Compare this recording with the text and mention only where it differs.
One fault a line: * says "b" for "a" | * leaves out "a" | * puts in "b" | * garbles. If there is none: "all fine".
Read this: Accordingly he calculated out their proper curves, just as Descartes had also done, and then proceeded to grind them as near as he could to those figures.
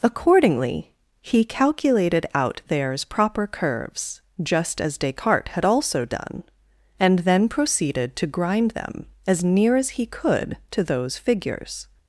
* says "theirs" for "their"